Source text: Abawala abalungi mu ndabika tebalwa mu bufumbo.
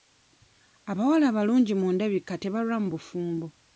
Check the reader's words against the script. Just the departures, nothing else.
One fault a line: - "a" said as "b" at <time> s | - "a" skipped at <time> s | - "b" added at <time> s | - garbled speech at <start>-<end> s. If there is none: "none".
none